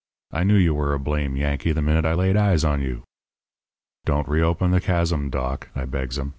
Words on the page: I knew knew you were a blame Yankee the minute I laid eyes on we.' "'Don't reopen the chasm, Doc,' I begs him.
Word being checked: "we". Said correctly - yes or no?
no